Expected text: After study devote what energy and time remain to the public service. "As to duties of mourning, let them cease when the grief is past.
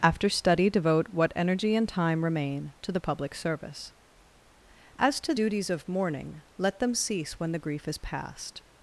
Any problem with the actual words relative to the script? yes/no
no